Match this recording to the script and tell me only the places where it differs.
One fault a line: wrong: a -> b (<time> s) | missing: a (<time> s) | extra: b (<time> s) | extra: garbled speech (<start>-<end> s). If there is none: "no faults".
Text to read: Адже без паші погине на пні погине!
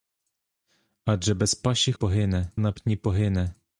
no faults